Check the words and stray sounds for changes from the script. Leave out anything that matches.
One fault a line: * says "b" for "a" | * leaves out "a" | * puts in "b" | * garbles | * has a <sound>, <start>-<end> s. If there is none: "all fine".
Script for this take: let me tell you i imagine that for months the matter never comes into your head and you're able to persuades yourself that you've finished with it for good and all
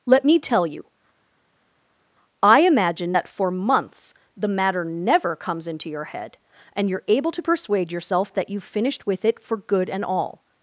* says "persuade" for "persuades"